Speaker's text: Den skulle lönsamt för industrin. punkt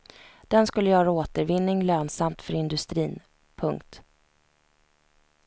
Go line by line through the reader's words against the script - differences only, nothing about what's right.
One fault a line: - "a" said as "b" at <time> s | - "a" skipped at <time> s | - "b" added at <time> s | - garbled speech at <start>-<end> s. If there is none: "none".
- "göra återvinning" added at 0.9 s